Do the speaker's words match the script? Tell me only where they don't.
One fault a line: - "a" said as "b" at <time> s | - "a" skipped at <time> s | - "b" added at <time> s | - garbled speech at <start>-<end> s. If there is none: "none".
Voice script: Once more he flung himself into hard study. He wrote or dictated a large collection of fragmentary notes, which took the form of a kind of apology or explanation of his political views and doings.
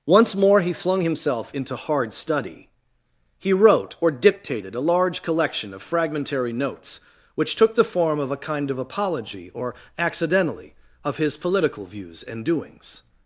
- "explanation" said as "accidentally" at 10.0 s